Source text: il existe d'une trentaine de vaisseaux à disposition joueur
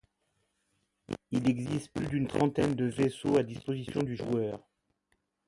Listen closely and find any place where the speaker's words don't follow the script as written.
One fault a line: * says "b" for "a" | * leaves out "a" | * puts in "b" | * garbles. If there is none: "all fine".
* puts in "plus"
* puts in "du"